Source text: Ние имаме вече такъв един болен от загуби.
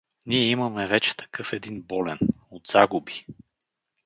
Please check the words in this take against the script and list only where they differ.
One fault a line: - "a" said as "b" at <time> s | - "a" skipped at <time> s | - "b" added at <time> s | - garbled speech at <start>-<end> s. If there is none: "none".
none